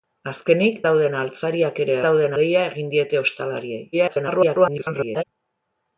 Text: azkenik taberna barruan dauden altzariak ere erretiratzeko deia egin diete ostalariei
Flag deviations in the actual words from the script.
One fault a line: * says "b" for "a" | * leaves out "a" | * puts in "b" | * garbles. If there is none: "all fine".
* leaves out "taberna barruan"
* says "dauden" for "erretiratzeko"
* garbles